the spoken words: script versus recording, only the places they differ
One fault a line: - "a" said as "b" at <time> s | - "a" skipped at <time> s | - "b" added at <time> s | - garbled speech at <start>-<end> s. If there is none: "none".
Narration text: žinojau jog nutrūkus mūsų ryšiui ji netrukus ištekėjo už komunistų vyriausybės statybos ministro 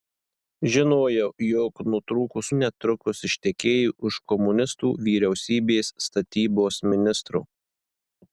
- "mūsų ryšiui ji" skipped at 2.5 s